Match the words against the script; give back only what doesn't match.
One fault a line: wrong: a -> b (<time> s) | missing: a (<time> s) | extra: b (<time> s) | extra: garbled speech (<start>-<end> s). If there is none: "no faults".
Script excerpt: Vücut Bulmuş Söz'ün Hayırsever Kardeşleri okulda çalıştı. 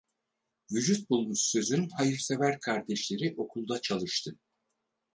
no faults